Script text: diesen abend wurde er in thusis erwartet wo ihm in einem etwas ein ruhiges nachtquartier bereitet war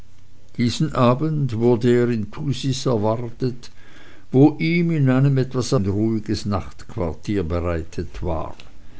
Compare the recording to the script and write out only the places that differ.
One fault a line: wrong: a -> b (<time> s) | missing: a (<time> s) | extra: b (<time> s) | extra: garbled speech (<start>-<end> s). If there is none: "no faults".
no faults